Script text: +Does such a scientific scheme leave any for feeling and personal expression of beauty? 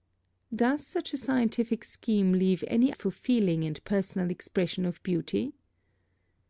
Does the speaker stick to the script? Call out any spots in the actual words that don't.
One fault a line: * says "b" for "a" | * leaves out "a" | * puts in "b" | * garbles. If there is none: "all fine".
all fine